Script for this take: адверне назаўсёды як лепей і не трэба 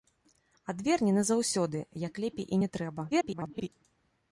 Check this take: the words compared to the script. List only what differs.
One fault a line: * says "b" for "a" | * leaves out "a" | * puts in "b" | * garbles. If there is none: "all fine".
* garbles